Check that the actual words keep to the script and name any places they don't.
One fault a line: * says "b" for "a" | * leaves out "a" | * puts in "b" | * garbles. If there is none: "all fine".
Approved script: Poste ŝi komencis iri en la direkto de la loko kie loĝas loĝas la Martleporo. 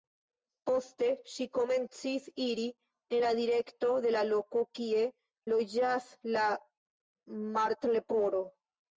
* leaves out "loĝas"